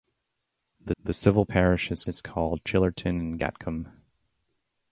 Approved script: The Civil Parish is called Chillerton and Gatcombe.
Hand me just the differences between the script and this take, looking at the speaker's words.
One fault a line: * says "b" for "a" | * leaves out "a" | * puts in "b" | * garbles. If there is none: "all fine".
* puts in "the"
* puts in "is"